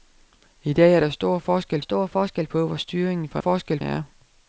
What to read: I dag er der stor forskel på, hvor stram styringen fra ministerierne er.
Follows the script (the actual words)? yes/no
no